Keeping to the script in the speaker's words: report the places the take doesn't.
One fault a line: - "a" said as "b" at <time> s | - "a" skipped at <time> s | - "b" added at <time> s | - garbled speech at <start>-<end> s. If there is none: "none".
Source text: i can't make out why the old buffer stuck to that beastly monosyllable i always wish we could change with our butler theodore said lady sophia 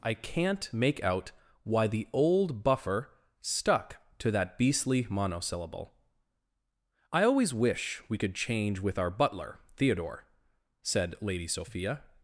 none